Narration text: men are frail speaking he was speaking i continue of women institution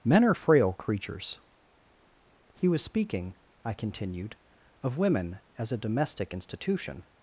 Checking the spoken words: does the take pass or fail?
fail